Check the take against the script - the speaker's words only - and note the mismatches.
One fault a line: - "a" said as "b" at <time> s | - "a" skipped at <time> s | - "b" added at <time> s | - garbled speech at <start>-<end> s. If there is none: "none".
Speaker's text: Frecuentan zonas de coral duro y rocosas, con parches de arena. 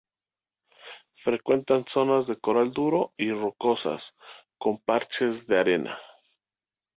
none